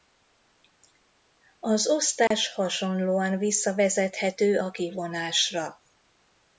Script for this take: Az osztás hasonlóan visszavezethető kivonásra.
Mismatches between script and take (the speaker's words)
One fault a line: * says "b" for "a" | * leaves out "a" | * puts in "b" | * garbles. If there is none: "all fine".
* puts in "a"